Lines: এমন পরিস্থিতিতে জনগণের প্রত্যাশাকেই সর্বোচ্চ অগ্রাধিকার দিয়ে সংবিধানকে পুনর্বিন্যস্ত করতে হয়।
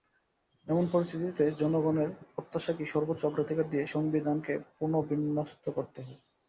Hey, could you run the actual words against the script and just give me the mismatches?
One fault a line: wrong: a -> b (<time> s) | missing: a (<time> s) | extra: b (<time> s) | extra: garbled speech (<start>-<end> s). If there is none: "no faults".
no faults